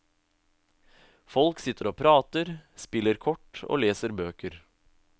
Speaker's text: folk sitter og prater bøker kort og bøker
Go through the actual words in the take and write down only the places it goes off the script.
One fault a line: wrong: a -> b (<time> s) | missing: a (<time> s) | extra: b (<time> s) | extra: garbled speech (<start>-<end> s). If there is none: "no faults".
wrong: bøker -> spiller (2.8 s)
extra: leser (3.8 s)